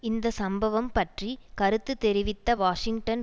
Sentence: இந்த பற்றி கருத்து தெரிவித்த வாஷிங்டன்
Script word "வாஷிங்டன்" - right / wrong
right